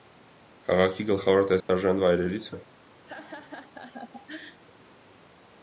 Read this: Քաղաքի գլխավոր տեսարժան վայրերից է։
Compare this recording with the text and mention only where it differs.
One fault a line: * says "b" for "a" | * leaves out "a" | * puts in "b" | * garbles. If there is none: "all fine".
all fine